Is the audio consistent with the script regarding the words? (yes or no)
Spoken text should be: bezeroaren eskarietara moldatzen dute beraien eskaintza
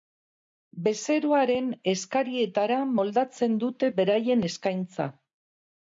yes